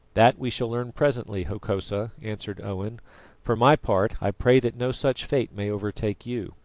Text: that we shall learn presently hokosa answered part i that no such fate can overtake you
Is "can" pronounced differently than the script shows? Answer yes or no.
yes